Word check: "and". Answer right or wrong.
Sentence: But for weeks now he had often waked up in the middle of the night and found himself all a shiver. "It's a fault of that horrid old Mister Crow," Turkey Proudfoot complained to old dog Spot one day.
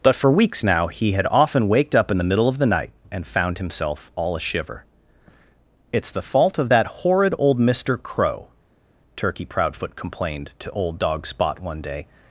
right